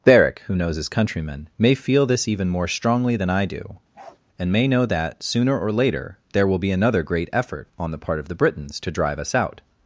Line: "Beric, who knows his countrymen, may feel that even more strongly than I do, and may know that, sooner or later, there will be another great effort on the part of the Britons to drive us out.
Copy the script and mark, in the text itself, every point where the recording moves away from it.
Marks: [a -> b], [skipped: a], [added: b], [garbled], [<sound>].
"Beric, who knows his countrymen, may feel [that -> this] even more strongly than I do, [bark] and may know that, sooner or later, there will be another great effort on the part of the Britons to drive us out.